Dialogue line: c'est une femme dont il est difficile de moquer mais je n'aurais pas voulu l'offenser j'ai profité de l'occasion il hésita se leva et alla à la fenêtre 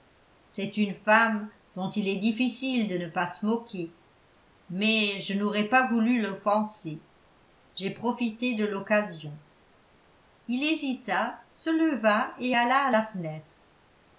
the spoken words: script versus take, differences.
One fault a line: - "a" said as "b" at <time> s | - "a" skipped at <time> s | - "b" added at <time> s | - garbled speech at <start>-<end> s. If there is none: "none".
- "ne pas se" added at 3.0 s